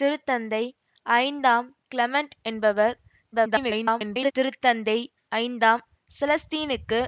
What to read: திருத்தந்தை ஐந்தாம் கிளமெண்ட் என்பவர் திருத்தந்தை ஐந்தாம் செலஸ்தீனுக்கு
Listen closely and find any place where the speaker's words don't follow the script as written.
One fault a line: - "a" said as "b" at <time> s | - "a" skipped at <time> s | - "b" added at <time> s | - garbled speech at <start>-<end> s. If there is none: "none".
- garbled speech at 3.3-4.3 s